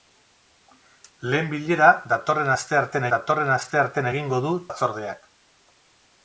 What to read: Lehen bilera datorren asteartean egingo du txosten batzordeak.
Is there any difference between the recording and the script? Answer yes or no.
yes